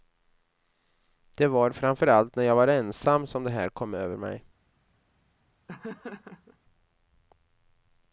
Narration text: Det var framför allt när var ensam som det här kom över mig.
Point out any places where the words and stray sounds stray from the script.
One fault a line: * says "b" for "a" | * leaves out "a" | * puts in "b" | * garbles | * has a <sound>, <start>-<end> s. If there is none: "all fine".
* puts in "jag"
* has a laugh, 5.7-6.6 s